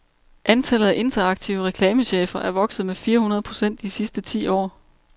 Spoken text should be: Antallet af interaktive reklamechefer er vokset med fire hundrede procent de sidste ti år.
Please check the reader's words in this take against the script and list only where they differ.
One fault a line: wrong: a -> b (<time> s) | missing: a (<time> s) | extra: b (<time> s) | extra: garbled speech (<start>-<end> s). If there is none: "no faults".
no faults